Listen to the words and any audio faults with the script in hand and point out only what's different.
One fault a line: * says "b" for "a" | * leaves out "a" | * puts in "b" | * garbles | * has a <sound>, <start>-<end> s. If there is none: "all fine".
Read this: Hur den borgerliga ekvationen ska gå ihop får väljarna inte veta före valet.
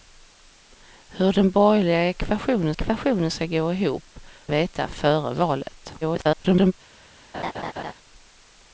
* puts in "ekvationen"
* leaves out "får väljarna inte"
* garbles
* has a laugh, 7.3-7.9 s